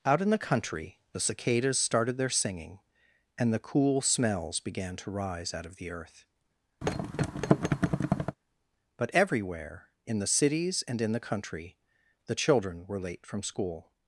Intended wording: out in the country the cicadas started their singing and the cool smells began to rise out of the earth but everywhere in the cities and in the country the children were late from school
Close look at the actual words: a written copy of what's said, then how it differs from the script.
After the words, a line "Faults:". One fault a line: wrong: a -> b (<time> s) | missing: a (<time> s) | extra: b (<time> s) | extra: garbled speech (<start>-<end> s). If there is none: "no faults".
out in the country the cicadas started their singing and the cool smells began to rise out of the earth but everywhere in the cities and in the country the children were late from school
Faults:
no faults